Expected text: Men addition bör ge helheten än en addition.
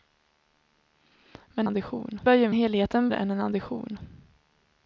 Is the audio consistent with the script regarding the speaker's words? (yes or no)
yes